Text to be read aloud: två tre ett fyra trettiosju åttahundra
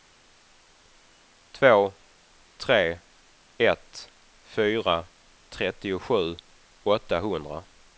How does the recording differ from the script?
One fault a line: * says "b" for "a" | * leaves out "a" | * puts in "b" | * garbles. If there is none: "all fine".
all fine